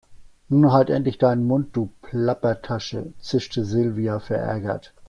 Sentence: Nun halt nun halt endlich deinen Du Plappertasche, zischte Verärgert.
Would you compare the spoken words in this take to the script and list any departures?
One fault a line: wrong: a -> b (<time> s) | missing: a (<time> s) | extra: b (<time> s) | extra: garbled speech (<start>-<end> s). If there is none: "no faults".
missing: nun halt (0.9 s)
extra: Mund (1.4 s)
extra: Silvia (3.6 s)